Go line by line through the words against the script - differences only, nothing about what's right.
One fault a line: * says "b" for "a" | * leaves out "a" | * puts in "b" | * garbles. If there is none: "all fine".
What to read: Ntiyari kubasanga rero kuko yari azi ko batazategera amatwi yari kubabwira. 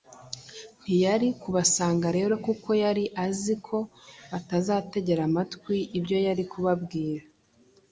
* puts in "ibyo"